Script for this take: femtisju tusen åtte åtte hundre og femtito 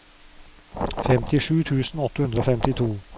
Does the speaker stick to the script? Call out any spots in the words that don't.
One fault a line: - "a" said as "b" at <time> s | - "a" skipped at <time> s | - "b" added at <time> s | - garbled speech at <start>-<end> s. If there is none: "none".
- "åtte" skipped at 2.2 s